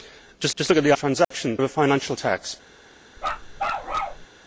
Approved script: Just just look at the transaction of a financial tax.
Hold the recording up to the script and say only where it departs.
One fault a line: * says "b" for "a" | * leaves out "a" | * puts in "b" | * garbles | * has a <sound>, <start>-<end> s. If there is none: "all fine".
* has a dropout, 1.2-1.3 s
* has a bark, 3.2-4.3 s